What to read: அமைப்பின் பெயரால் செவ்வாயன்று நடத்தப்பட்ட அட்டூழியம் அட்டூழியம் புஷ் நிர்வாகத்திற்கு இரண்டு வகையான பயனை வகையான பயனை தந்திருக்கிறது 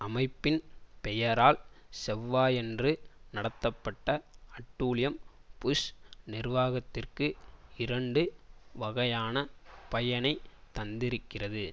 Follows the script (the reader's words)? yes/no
no